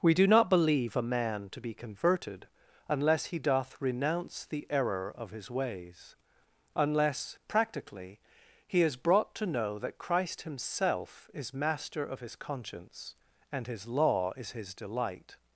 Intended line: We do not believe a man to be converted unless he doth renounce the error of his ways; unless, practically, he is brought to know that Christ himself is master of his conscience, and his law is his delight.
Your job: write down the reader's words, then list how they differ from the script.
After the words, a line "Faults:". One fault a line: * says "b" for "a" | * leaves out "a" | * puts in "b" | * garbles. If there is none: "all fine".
We do not believe a man to be converted unless he doth renounce the error of his ways; unless, practically, he is brought to know that Christ himself is master of his conscience, and his law is his delight.
Faults:
all fine